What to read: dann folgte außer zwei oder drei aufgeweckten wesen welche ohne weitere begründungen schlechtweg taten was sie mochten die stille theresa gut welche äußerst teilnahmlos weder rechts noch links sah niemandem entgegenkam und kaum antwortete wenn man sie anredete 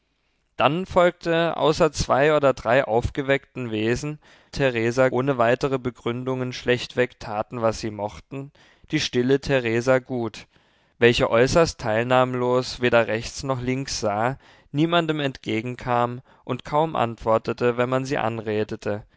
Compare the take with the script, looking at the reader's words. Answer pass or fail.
fail